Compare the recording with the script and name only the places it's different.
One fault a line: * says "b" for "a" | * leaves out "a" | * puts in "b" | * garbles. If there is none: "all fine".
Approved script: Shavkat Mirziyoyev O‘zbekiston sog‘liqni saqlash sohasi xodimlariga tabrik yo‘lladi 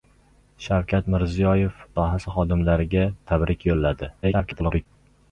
* leaves out "O‘zbekiston sog‘liqni saqlash"
* garbles